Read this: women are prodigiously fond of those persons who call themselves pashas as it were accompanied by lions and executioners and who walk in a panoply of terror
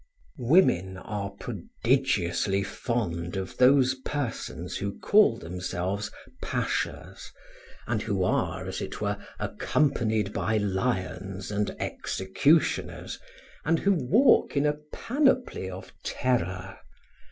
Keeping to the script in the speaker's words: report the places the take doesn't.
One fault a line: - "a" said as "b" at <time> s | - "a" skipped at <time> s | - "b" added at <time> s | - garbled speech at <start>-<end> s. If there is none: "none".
- "and who are" added at 7.8 s